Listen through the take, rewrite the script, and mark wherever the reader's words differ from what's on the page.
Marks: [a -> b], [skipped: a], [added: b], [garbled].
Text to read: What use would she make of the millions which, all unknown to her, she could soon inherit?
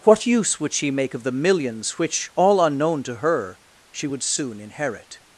What use would she make of the millions which, all unknown to her, she [could -> would] soon inherit?